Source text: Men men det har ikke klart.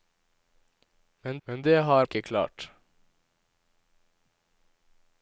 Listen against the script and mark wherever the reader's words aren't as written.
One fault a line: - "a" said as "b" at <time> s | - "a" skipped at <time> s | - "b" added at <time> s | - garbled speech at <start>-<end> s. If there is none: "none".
none